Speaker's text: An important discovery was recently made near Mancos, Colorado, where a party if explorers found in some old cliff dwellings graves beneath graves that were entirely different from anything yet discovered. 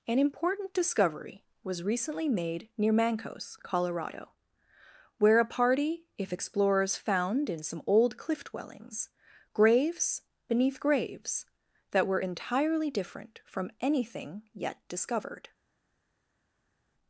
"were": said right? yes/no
yes